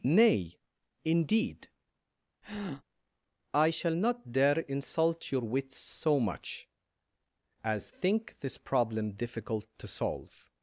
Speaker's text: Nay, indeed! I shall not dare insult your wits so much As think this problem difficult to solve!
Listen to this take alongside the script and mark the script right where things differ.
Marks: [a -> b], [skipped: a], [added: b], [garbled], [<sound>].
Nay, indeed! [breath] I shall not dare insult your wits so much As think this problem difficult to solve!